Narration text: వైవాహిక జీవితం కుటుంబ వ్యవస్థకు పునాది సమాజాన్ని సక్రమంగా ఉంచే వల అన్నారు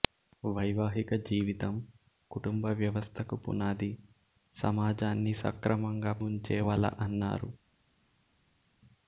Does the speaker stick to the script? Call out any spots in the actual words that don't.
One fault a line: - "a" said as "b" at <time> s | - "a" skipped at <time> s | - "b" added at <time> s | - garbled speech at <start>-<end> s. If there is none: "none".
none